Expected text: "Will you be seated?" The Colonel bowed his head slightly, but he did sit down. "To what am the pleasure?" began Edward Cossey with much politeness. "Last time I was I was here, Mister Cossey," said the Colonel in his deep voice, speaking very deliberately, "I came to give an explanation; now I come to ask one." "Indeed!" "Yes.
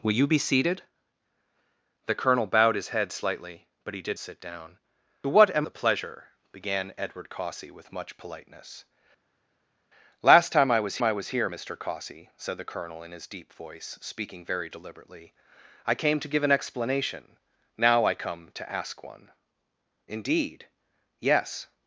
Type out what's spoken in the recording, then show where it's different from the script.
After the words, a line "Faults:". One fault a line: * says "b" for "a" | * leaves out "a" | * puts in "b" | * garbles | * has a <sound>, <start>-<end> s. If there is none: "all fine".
"Will you be seated?" The Colonel bowed his head slightly, but he did sit down. "To what am the pleasure?" began Edward Cossey with much politeness. "Last time I was I was here, Mister Cossey," said the Colonel in his deep voice, speaking very deliberately, "I came to give an explanation; now I come to ask one." "Indeed!" "Yes.
Faults:
all fine